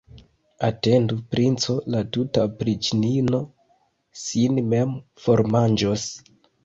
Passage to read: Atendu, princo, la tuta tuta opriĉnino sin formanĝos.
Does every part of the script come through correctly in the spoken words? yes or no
no